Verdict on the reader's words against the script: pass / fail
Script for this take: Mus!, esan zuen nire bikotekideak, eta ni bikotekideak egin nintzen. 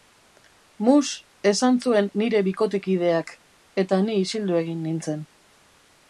fail